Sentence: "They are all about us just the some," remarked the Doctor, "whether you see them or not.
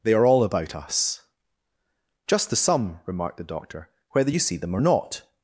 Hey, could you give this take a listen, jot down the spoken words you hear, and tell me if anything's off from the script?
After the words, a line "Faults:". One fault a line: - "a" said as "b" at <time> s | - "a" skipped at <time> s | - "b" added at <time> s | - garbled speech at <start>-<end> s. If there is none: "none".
"They are all about us just the some," remarked the Doctor, "whether you see them or not.
Faults:
none